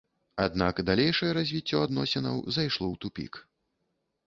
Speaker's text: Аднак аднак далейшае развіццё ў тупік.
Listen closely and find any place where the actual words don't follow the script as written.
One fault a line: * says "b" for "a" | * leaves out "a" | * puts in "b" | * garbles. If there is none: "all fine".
* leaves out "аднак"
* puts in "адносінаў зайшло"